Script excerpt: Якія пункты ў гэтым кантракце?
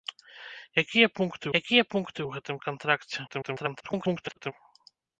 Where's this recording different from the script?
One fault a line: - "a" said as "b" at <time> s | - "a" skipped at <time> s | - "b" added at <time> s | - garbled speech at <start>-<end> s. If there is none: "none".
- "якія пункты" added at 1.6 s
- garbled speech at 3.3-4.5 s